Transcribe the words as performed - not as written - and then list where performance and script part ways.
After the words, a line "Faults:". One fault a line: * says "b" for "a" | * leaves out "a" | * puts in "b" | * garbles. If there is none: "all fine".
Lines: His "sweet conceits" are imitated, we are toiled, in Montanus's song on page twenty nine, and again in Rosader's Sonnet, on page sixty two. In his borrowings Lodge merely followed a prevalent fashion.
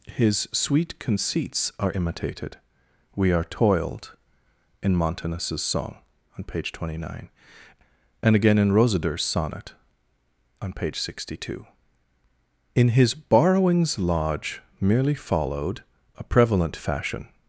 His "sweet conceits" are imitated, we are toiled, in Montanus's song on page twenty nine, and again in Rosader's Sonnet, on page sixty two. In his borrowings Lodge merely followed a prevalent fashion.
Faults:
all fine